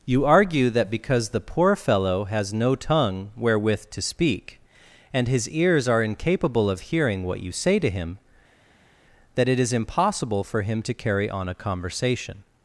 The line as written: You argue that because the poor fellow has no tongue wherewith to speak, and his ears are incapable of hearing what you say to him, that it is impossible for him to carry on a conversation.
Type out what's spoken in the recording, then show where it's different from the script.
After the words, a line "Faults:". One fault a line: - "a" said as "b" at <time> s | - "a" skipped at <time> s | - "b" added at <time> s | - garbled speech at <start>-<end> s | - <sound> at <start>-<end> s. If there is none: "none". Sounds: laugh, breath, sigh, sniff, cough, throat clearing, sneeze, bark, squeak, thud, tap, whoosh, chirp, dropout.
You argue that because the poor fellow has no tongue wherewith to speak, and his ears are incapable of hearing what you say to him, that it is impossible for him to carry on a conversation.
Faults:
none